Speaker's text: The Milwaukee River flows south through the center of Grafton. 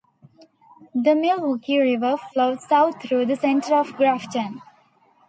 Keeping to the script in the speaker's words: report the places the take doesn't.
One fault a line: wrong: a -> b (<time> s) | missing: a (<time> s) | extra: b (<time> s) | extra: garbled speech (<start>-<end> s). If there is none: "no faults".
no faults